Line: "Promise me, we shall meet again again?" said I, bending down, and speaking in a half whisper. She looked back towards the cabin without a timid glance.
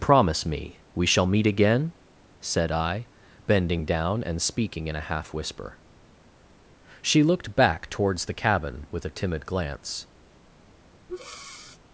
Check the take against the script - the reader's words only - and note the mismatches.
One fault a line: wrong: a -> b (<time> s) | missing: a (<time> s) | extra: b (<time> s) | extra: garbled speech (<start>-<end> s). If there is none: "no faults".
missing: again (1.9 s)
wrong: without -> with (8.9 s)